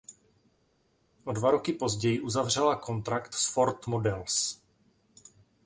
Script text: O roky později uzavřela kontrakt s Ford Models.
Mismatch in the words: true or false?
true